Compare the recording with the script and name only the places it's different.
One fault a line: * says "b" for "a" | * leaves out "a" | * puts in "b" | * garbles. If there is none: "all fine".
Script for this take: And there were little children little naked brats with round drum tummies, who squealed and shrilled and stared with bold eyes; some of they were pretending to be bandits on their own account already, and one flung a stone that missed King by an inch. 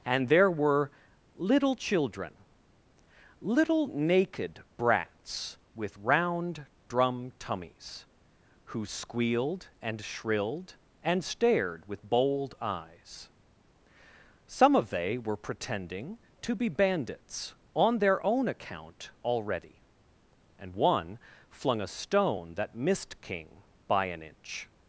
all fine